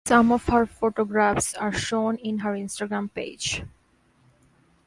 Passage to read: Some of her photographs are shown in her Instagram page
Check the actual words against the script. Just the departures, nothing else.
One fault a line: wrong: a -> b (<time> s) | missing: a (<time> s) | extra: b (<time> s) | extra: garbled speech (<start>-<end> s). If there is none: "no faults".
no faults